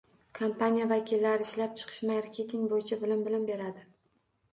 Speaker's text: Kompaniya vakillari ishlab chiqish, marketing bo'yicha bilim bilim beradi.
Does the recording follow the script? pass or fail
pass